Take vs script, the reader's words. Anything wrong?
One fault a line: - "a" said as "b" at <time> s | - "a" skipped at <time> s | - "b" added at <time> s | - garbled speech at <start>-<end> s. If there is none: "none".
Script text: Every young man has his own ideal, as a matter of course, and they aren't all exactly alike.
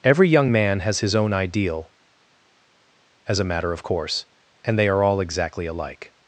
- "aren't" said as "are" at 4.9 s